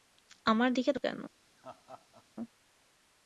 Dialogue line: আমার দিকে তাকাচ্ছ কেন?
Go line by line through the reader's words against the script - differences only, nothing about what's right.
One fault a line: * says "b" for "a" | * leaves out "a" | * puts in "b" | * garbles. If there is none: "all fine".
* leaves out "তাকাচ্ছ"